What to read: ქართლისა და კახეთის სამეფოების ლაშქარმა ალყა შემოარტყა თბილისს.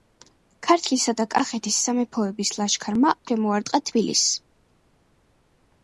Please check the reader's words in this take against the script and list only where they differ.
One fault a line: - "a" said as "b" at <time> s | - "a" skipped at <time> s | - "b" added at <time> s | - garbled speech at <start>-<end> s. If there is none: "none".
- "ალყა" skipped at 3.1 s